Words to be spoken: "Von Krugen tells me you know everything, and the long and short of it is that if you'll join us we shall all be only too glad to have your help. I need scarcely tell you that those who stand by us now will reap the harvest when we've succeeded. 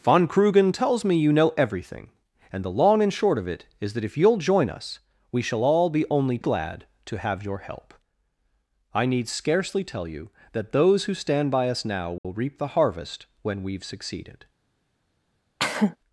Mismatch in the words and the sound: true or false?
true